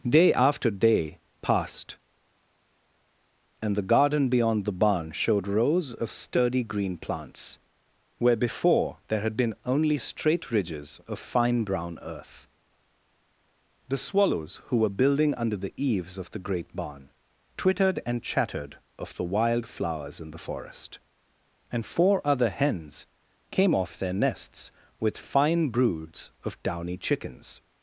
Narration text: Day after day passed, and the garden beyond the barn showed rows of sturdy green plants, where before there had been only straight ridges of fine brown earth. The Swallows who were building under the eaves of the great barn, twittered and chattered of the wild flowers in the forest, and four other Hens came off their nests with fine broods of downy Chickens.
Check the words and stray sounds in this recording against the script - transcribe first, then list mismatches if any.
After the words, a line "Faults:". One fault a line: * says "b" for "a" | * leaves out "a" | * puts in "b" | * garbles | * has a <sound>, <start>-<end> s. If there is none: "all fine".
Day after day passed, and the garden beyond the barn showed rows of sturdy green plants, where before there had been only straight ridges of fine brown earth. The Swallows who were building under the eaves of the great barn, twittered and chattered of the wild flowers in the forest, and four other Hens came off their nests with fine broods of downy Chickens.
Faults:
all fine